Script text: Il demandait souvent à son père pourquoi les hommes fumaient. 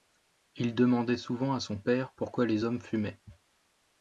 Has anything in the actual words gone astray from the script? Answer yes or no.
no